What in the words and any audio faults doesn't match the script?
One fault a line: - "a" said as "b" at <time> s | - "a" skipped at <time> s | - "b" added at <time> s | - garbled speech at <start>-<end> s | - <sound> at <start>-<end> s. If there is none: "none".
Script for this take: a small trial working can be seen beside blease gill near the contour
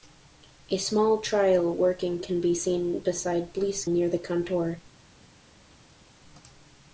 - "gill" skipped at 3.8 s